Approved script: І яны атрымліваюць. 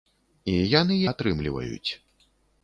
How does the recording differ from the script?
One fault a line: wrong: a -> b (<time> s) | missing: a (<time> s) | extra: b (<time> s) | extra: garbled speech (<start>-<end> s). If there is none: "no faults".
no faults